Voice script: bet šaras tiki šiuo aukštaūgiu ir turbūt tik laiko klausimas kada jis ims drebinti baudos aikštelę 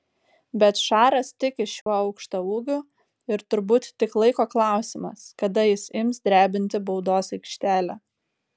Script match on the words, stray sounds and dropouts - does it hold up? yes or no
no